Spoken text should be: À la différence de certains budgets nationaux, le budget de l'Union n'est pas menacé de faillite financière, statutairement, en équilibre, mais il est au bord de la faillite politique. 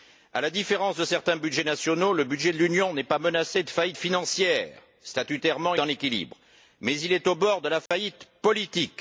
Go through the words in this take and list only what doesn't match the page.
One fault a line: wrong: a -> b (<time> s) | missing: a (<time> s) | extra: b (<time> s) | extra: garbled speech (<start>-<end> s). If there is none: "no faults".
no faults